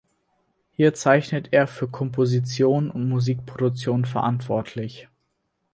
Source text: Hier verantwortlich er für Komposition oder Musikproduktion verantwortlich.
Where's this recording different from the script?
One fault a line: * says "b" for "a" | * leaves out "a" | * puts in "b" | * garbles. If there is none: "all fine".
* says "zeichnet" for "verantwortlich"
* says "und" for "oder"